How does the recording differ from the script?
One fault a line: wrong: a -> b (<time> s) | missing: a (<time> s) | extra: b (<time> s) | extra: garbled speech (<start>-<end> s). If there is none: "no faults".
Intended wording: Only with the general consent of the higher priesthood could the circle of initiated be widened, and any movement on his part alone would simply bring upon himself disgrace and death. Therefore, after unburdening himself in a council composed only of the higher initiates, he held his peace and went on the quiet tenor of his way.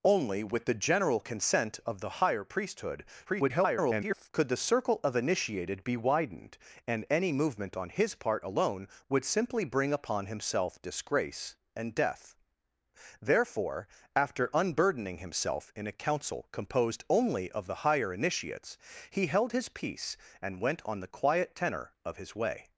extra: garbled speech (3.3-4.3 s)